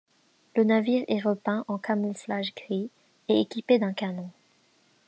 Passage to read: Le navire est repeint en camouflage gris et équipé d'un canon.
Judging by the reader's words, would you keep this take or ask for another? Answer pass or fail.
pass